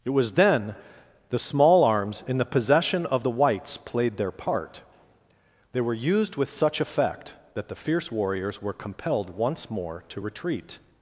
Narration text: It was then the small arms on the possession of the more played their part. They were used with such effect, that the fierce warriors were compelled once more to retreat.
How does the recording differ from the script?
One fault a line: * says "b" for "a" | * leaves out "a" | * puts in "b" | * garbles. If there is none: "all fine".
* says "in" for "on"
* says "whites" for "more"